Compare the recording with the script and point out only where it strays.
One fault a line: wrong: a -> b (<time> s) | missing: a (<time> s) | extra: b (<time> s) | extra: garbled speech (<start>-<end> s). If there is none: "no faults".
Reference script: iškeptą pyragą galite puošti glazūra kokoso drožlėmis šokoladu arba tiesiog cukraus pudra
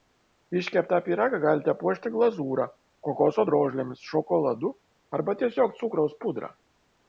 no faults